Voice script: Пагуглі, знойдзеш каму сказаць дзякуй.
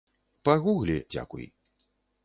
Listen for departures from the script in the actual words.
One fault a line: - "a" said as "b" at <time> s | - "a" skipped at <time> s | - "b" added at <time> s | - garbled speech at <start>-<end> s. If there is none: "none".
- "знойдзеш каму сказаць" skipped at 0.9 s